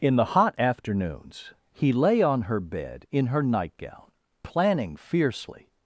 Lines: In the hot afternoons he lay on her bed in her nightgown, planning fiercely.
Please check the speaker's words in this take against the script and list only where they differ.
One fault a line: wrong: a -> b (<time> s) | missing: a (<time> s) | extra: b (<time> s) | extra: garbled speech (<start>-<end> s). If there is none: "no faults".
no faults